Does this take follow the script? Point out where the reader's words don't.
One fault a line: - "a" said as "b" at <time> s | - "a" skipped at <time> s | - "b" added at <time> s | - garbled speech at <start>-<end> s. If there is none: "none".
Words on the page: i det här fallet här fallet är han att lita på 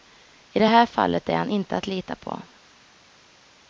- "här fallet" skipped at 1.3 s
- "inte" added at 1.5 s